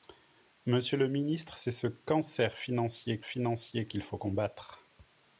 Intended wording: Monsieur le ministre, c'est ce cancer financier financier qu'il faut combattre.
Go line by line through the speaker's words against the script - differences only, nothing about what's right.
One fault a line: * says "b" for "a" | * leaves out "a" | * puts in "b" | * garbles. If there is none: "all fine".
all fine